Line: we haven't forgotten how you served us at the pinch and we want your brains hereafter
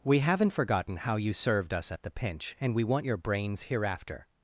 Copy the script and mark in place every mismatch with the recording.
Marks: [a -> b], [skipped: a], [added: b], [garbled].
we haven't forgotten how you served us at the pinch and we want your brains hereafter